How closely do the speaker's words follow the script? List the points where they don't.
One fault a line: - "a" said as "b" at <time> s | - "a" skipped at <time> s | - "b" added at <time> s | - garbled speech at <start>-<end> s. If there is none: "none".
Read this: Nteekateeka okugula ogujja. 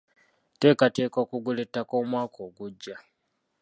- "ettaka omwaka" added at 1.6 s